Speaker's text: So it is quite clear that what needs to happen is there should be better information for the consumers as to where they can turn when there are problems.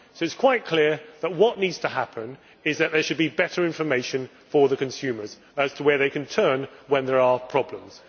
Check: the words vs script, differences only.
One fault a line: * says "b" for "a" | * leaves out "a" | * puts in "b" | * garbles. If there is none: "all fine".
* puts in "that"